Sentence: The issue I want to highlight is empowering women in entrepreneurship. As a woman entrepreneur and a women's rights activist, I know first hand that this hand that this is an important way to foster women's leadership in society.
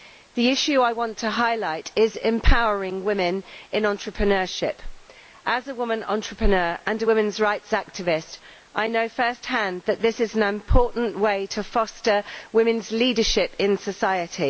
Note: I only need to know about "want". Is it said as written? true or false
true